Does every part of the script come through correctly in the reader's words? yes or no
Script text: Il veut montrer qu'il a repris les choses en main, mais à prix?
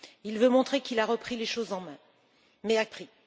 yes